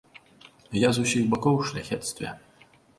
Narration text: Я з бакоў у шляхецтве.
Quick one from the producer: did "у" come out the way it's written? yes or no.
yes